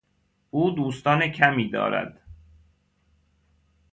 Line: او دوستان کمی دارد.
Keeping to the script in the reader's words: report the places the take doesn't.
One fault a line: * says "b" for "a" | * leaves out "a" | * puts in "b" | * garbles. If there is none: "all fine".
all fine